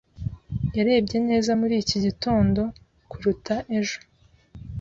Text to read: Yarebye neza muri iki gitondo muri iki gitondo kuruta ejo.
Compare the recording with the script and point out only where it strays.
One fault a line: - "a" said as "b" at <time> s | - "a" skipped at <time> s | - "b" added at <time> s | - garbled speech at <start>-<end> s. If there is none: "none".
- "muri iki gitondo" skipped at 2.6 s